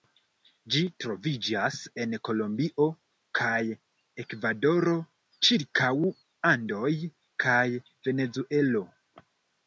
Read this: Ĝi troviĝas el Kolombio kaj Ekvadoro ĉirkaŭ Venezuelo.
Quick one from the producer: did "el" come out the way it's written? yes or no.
no